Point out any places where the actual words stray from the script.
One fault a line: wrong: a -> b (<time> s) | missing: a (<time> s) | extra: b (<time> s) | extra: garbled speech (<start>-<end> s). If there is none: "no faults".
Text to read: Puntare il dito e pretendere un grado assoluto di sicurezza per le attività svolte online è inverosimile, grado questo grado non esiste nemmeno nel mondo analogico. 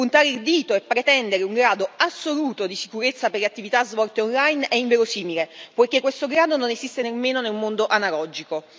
wrong: grado -> poiché (5.8 s)